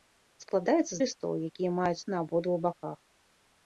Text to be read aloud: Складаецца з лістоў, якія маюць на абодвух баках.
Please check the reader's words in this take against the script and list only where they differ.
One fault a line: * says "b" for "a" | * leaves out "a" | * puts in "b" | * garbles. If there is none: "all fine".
all fine